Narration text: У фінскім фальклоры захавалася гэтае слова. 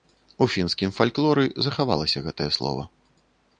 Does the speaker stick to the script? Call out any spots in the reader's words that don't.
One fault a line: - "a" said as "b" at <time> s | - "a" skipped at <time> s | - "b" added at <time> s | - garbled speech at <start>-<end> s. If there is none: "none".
none